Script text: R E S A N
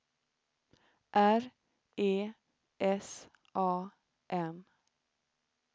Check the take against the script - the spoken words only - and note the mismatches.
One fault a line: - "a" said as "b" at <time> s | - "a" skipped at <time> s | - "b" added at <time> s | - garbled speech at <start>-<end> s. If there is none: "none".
none